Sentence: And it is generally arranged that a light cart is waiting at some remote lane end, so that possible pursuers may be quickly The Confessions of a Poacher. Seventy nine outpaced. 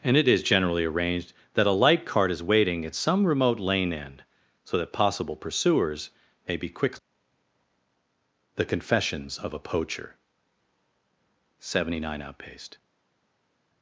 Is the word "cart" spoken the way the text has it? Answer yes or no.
yes